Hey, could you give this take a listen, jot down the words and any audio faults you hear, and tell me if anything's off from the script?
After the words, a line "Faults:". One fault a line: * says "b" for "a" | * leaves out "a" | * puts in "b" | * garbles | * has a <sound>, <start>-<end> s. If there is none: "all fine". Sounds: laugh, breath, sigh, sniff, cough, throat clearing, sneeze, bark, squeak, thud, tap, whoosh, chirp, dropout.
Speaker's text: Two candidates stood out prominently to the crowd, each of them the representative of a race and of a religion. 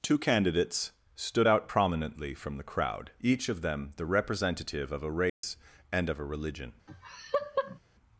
Two candidates stood out prominently from the crowd, each of them the representative of a race and of a religion.
Faults:
* says "from" for "to"
* has a dropout, 5.3-5.4 s
* has a laugh, 6.9-7.8 s